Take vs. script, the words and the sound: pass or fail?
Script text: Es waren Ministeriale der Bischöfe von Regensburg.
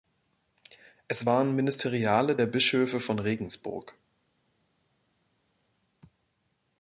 pass